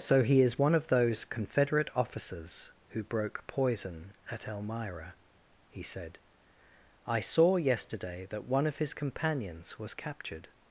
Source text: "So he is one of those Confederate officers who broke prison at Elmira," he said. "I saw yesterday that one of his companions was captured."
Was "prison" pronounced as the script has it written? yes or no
no